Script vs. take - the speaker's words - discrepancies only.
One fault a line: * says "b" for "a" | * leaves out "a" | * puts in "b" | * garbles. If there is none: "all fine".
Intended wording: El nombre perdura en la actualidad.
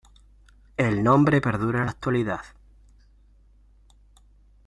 all fine